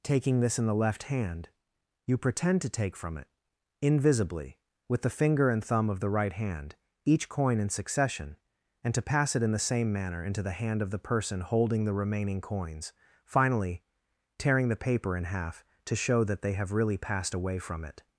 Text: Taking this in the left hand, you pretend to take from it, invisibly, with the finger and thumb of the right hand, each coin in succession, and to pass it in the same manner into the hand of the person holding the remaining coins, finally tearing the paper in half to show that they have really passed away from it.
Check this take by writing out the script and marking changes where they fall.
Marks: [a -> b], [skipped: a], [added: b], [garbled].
Taking this in the left hand, you pretend to take from it, invisibly, with the finger and thumb of the right hand, each coin in succession, and to pass it in the same manner into the hand of the person holding the remaining coins, finally tearing the paper in half to show that they have really passed away from it.